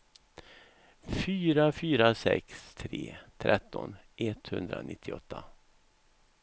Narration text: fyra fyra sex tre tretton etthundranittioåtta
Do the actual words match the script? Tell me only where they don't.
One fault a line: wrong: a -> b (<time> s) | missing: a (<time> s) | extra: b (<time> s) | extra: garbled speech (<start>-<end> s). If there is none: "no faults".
no faults